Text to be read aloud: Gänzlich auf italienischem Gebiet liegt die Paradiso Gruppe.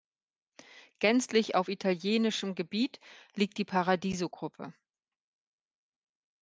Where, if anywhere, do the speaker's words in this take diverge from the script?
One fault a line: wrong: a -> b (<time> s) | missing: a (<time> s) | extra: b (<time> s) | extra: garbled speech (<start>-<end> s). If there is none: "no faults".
no faults